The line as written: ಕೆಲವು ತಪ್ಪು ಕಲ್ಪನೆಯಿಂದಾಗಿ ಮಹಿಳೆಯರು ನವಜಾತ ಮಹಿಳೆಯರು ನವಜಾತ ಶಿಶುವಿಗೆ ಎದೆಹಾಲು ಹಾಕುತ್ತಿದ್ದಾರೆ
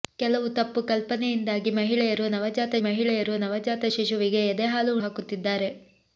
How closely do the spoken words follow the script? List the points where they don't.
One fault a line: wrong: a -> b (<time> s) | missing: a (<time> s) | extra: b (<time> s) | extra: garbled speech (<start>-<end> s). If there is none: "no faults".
no faults